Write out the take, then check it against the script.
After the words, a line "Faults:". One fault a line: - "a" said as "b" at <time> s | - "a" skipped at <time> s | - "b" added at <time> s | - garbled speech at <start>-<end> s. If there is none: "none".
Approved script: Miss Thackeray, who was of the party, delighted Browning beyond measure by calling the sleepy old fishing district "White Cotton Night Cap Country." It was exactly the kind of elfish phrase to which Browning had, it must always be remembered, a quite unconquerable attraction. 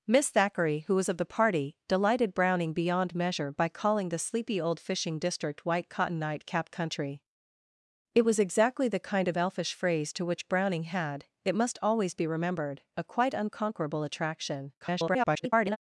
Miss Thackeray, who was of the party, delighted Browning beyond measure by calling the sleepy old fishing district "White Cotton Night Cap Country." It was exactly the kind of elfish phrase to which Browning had, it must always be remembered, a quite unconquerable attraction. [garbled]
Faults:
- garbled speech at 14.8-15.8 s